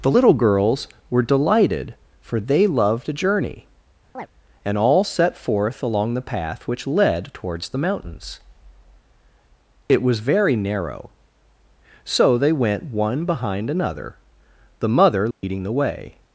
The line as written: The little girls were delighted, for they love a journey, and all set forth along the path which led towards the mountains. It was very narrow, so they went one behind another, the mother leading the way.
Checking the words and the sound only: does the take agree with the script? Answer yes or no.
no